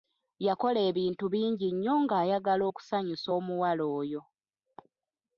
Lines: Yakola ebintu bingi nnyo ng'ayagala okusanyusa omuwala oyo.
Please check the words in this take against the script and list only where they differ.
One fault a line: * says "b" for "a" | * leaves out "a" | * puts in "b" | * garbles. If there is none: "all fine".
all fine